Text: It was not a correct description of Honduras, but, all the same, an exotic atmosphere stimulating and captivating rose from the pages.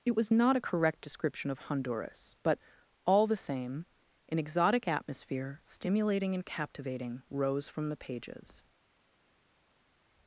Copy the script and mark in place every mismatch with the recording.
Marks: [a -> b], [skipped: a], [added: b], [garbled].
It was not a correct description of Honduras, but, all the same, an exotic atmosphere stimulating and captivating rose from the pages.